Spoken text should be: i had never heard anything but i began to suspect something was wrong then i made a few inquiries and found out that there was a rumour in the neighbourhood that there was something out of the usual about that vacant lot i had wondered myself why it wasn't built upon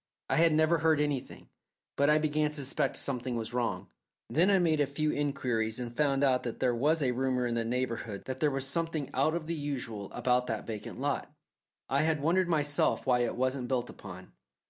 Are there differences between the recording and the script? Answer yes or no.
no